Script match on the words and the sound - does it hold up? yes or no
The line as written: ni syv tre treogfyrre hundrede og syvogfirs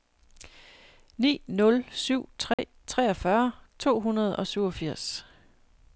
no